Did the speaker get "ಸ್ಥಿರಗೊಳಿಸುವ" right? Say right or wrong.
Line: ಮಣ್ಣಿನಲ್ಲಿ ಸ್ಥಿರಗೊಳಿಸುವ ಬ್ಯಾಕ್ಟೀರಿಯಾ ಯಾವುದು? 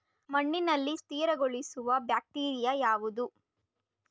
right